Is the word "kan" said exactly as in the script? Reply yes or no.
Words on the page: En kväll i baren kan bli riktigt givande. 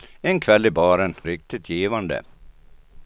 no